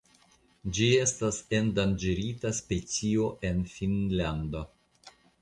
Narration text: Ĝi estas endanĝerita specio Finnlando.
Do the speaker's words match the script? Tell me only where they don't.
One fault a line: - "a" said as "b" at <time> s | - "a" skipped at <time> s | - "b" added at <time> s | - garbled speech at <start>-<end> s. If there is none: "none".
- "en" added at 3.5 s